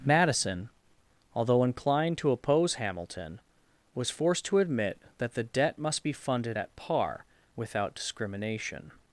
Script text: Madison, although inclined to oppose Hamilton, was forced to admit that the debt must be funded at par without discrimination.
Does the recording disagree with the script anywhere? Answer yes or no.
no